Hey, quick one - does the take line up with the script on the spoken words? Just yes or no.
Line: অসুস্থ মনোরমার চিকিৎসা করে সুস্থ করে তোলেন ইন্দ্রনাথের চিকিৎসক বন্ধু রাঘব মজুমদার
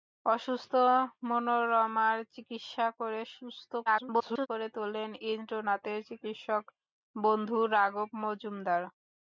no